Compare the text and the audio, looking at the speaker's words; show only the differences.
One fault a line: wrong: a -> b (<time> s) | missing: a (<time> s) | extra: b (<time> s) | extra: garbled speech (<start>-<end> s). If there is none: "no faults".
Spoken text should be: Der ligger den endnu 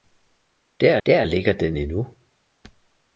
extra: der (1.0 s)